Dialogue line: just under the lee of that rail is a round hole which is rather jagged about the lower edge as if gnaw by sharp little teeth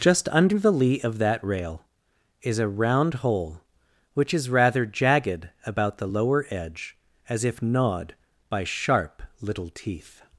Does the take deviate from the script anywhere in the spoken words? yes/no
yes